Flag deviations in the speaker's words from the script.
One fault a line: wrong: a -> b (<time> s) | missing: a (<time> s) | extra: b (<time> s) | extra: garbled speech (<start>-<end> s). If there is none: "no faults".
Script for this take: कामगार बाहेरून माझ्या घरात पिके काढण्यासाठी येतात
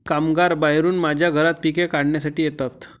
no faults